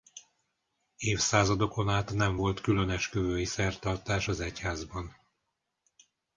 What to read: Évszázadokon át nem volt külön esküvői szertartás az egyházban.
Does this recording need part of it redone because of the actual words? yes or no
no